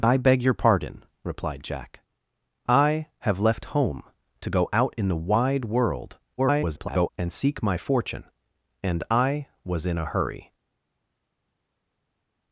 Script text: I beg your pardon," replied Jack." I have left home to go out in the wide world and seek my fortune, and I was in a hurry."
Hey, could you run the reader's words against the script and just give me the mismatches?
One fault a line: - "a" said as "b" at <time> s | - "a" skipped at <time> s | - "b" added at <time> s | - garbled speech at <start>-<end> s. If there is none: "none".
- garbled speech at 6.4-7.1 s